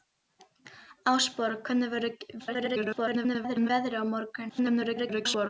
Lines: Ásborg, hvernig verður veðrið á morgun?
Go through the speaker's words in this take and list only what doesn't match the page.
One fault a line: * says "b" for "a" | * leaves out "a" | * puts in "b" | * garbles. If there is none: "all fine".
* garbles
* garbles